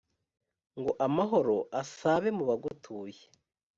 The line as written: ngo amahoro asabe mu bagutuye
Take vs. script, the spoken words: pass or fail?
pass